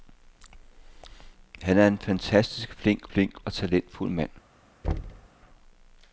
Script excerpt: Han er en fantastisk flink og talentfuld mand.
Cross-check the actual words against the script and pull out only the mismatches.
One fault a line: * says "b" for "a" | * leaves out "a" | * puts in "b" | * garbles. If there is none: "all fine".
* puts in "flink"